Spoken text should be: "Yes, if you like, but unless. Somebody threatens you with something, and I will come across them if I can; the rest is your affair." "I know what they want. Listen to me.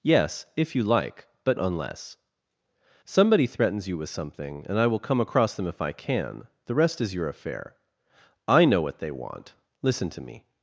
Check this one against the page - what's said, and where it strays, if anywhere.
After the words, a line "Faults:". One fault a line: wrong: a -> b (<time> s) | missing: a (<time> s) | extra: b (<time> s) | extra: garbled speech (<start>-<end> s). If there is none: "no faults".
"Yes, if you like, but unless. Somebody threatens you with something, and I will come across them if I can; the rest is your affair." "I know what they want. Listen to me.
Faults:
no faults